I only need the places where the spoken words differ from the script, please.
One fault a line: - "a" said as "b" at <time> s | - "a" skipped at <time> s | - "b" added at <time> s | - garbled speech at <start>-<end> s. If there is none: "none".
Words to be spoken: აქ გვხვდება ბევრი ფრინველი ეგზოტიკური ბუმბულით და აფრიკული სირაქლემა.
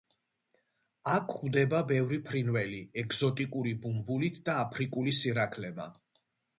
none